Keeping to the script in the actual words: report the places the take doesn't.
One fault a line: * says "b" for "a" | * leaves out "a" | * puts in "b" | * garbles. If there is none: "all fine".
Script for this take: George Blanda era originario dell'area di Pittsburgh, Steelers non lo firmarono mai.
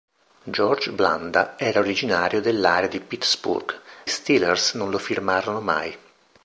all fine